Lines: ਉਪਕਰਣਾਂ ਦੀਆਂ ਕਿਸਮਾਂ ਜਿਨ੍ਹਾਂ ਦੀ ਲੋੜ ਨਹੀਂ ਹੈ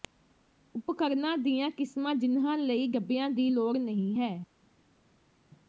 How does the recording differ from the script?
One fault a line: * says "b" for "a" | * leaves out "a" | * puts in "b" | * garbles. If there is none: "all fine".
* puts in "ਲਈ ਡੱਬਿਆਂ"